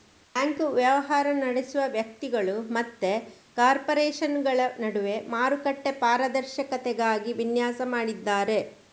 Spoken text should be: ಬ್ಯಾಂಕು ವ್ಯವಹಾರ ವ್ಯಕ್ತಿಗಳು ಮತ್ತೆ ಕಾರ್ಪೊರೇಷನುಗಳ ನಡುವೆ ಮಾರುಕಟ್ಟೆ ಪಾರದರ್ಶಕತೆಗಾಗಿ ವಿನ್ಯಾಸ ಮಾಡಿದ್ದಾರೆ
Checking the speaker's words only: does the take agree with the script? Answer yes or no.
no